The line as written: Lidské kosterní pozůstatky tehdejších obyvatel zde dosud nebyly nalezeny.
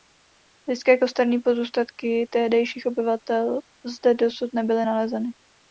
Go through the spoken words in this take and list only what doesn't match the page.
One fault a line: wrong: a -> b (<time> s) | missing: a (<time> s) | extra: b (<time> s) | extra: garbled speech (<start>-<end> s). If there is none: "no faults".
no faults